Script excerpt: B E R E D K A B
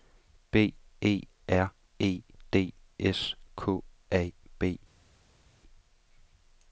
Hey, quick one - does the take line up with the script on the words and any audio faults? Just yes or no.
no